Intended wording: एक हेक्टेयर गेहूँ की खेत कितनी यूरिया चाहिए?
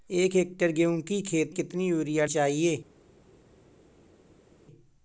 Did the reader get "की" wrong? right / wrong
right